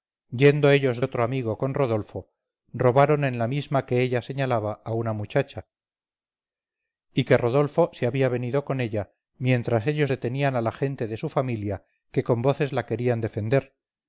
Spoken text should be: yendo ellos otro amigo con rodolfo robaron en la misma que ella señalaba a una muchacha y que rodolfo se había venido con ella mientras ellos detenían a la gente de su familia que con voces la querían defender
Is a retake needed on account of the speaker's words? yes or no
no